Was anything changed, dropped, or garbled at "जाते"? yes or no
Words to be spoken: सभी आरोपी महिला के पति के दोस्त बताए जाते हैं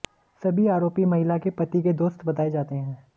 no